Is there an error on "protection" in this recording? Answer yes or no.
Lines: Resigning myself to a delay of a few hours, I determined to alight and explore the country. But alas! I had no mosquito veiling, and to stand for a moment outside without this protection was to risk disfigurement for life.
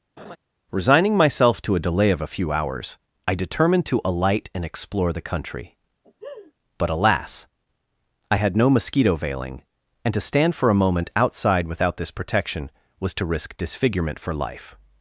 no